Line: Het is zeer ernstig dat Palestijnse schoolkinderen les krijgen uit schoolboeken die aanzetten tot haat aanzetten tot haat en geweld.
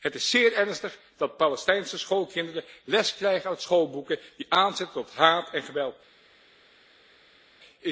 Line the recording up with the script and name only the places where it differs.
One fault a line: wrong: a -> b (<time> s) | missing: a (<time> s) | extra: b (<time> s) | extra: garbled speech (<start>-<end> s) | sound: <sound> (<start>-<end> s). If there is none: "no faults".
missing: aanzetten tot haat (5.5 s)